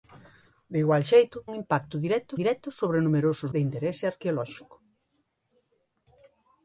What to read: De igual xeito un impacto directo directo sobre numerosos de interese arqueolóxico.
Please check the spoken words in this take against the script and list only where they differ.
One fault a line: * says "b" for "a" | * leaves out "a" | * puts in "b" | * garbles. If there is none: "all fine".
all fine